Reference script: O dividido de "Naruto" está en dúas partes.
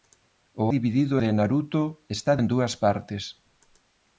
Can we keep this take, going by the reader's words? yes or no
yes